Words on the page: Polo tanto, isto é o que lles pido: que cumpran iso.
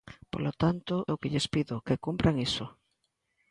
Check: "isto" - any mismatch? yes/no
yes